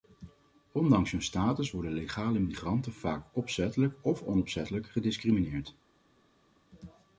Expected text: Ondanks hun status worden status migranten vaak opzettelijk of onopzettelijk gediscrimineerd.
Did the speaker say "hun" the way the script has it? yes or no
yes